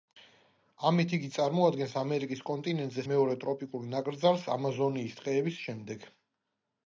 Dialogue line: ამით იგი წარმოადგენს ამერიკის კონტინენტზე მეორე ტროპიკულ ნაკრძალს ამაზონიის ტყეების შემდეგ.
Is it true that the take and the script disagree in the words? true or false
false